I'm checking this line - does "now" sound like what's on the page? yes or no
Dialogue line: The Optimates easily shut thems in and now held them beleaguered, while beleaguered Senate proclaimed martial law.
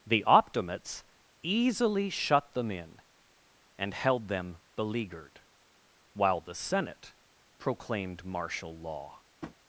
no